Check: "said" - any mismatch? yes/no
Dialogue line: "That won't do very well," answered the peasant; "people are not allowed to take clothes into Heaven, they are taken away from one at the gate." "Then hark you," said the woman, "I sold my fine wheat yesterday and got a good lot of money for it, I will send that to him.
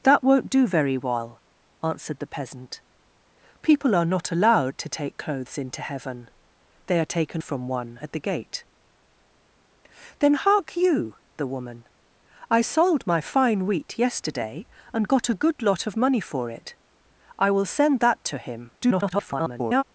yes